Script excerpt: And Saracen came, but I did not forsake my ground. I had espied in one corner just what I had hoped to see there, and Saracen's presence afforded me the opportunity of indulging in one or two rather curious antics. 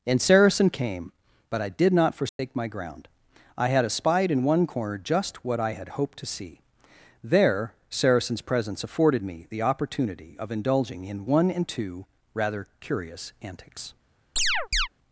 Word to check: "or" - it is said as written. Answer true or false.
false